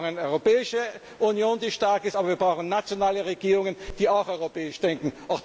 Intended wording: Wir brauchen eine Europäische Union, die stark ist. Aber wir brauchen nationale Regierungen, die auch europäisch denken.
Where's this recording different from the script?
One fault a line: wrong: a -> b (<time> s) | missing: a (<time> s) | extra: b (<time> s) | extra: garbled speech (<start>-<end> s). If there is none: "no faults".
no faults